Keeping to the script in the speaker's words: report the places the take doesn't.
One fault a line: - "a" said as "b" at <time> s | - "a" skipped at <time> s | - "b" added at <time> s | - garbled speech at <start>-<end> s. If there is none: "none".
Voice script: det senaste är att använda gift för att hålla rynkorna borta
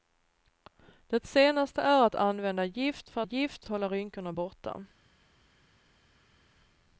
- "att" said as "gift" at 3.2 s